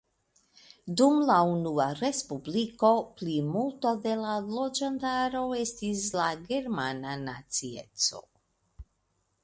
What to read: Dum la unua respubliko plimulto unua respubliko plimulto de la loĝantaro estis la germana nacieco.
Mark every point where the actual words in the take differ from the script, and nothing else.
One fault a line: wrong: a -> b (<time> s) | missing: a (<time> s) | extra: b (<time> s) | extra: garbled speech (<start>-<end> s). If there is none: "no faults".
missing: unua respubliko plimulto (3.9 s)